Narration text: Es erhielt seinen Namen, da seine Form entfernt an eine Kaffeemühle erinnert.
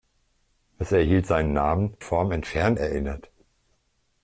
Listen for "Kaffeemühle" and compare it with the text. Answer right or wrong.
wrong